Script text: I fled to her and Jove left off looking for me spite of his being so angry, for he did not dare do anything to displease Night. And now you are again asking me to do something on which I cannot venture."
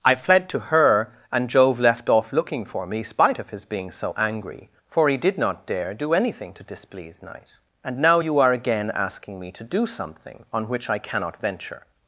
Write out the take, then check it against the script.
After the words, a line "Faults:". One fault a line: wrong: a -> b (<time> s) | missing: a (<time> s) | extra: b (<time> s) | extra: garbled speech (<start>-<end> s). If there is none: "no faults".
I fled to her and Jove left off looking for me spite of his being so angry, for he did not dare do anything to displease Night. And now you are again asking me to do something on which I cannot venture."
Faults:
no faults